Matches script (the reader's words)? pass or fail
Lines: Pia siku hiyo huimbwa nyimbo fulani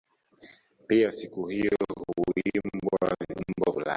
pass